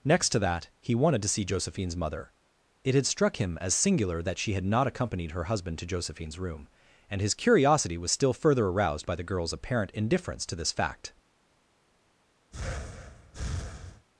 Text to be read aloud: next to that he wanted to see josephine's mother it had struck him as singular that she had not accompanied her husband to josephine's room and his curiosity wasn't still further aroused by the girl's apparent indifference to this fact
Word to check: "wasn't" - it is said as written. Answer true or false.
false